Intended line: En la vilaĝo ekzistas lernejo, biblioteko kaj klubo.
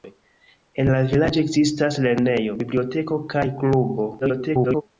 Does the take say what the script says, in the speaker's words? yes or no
no